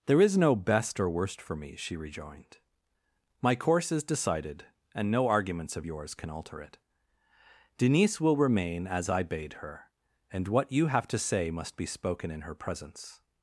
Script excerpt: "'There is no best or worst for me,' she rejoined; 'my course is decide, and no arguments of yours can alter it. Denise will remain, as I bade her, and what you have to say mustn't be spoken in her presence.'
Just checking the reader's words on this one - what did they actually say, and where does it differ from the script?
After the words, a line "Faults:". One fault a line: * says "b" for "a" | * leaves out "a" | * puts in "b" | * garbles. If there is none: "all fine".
"'There is no best or worst for me,' she rejoined; 'my course is decided, and no arguments of yours can alter it. Denise will remain, as I bade her, and what you have to say must be spoken in her presence.'
Faults:
* says "decided" for "decide"
* says "must" for "mustn't"